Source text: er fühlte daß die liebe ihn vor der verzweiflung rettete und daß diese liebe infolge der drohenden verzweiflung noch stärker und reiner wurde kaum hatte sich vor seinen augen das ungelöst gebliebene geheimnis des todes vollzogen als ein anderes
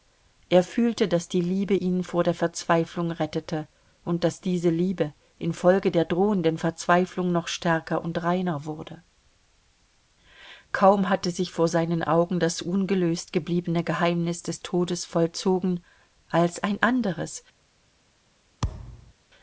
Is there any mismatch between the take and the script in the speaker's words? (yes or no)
no